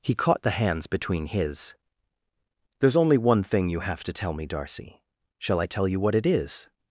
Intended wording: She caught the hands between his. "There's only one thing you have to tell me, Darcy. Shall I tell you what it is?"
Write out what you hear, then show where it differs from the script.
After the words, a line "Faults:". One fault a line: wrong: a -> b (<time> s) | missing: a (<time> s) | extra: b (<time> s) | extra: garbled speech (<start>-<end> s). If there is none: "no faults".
He caught the hands between his. "There's only one thing you have to tell me, Darcy. Shall I tell you what it is?"
Faults:
wrong: She -> He (0.0 s)